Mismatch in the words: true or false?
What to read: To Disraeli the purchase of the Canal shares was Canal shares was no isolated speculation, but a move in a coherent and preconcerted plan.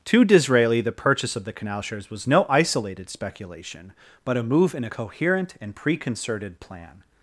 true